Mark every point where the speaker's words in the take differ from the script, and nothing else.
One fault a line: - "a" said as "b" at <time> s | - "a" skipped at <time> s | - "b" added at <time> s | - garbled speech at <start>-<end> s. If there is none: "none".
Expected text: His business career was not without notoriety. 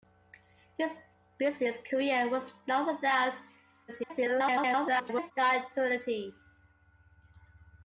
- garbled speech at 3.9-5.3 s